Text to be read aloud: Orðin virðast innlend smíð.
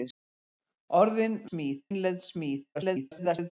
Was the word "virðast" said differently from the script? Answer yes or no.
yes